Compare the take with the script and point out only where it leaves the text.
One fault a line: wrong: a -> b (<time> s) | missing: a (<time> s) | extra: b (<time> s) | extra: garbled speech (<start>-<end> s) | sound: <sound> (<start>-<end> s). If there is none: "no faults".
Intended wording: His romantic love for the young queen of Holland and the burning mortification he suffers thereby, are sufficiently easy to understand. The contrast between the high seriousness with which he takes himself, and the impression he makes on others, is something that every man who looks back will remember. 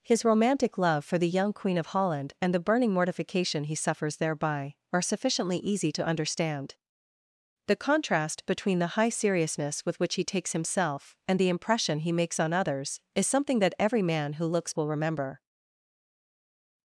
missing: back (14.7 s)